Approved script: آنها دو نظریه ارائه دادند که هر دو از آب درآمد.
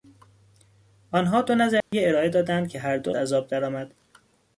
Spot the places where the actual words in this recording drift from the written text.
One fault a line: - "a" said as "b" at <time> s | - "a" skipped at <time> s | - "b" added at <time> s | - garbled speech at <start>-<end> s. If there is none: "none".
none